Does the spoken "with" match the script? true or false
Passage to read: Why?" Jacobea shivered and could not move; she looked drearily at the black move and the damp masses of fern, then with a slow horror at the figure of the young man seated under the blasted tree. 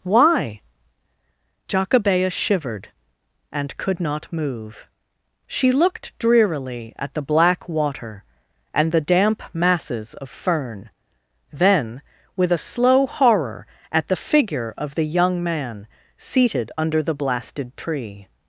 true